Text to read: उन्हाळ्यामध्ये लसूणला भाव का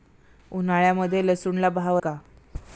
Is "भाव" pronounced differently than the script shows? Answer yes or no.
no